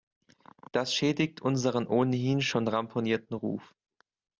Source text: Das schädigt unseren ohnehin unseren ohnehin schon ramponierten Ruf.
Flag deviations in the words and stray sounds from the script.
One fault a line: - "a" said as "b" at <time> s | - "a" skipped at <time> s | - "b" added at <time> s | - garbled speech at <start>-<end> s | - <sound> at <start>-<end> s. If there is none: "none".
- "unseren ohnehin" skipped at 2.4 s